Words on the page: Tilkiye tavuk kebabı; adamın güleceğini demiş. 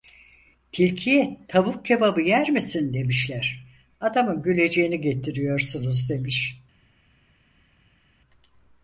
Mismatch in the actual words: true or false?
true